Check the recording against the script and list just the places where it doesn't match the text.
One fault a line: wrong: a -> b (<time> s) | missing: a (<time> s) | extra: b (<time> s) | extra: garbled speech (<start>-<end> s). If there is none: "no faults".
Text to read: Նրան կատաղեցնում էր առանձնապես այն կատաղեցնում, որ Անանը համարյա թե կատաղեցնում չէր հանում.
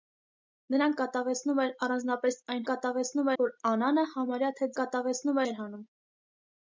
no faults